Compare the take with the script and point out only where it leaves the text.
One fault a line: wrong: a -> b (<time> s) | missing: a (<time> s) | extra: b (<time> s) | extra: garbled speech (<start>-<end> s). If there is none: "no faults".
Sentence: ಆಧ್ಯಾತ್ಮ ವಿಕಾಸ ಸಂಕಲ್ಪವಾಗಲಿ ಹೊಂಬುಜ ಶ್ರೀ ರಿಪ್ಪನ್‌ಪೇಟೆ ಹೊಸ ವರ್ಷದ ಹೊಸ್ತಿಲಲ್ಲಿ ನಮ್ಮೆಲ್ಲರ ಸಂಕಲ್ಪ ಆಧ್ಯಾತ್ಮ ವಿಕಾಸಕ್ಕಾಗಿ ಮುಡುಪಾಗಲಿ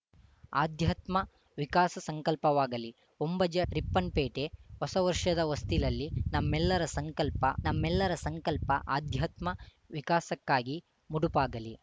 missing: ಶ್ರೀ (3.6 s)
extra: ನಮ್ಮೆಲ್ಲರ ಸಂಕಲ್ಪ (7.6 s)